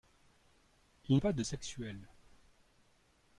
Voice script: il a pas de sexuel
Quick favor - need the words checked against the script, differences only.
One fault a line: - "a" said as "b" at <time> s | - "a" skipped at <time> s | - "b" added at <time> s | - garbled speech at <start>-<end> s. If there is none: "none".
none